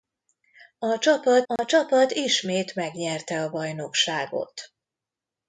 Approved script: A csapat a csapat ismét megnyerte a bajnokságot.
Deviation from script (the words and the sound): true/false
true